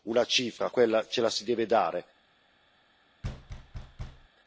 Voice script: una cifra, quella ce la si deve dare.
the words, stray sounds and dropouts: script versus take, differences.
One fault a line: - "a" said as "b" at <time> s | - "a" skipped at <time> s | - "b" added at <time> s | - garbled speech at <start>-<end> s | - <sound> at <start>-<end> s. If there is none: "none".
- thud at 3.2-4.3 s